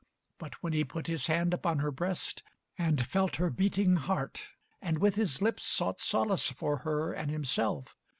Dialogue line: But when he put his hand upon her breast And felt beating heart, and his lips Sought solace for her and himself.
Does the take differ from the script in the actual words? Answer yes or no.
yes